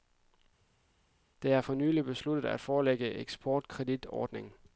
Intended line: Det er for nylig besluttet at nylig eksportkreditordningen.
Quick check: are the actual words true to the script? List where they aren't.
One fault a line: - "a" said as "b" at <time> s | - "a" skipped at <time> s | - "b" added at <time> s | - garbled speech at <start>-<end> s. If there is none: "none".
- "nylig" said as "forlænge" at 2.6 s